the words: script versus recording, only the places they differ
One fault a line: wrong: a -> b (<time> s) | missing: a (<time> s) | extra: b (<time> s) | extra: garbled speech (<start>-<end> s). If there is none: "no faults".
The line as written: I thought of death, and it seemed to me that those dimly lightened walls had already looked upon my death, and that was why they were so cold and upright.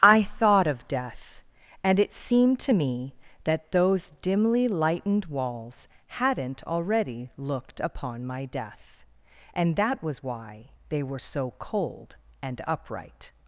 wrong: had -> hadn't (6.1 s)